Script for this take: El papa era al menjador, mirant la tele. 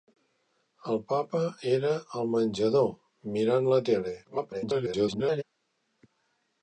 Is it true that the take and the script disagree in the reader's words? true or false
true